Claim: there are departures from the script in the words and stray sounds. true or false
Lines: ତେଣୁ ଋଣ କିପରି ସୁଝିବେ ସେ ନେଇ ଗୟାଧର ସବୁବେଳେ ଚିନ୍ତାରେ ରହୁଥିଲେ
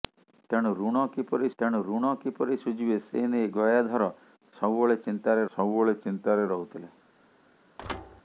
true